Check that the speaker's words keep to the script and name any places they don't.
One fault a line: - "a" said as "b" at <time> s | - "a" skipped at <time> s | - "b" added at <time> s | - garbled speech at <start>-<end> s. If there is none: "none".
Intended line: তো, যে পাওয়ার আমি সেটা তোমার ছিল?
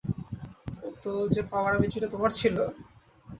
none